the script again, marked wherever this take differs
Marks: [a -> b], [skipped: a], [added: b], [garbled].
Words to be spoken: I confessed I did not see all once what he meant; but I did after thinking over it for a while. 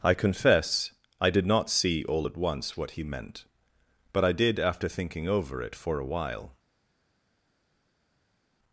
I [confessed -> confess] I did not see all [added: at] once what he meant; but I did after thinking over it for a while.